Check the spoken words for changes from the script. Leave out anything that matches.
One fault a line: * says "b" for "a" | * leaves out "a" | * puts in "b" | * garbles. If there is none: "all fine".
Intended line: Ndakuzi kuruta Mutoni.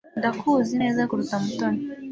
* puts in "neza"